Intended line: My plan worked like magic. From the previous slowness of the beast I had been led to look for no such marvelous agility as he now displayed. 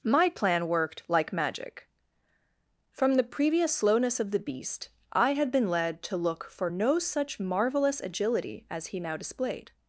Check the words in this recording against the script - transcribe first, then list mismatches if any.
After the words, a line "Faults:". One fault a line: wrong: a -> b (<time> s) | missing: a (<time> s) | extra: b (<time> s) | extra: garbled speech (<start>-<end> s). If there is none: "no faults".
My plan worked like magic. From the previous slowness of the beast I had been led to look for no such marvelous agility as he now displayed.
Faults:
no faults